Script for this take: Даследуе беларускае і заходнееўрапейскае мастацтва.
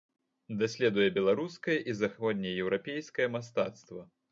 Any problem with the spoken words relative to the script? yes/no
no